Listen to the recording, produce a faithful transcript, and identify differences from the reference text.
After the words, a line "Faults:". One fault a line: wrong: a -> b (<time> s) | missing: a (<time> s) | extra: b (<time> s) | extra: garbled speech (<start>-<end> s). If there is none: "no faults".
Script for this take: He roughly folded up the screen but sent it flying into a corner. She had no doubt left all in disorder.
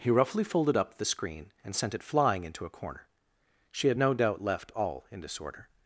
He roughly folded up the screen and sent it flying into a corner. She had no doubt left all in disorder.
Faults:
wrong: but -> and (1.6 s)